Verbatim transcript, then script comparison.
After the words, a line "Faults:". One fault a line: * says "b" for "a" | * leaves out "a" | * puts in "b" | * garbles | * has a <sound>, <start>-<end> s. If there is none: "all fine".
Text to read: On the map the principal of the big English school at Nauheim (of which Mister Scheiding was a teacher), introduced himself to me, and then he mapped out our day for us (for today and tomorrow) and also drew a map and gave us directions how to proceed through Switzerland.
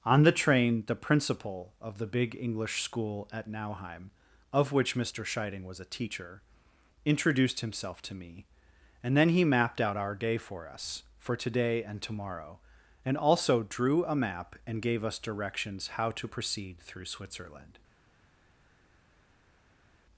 On the train the principal of the big English school at Nauheim (of which Mister Scheiding was a teacher), introduced himself to me, and then he mapped out our day for us (for today and tomorrow) and also drew a map and gave us directions how to proceed through Switzerland.
Faults:
* says "train" for "map"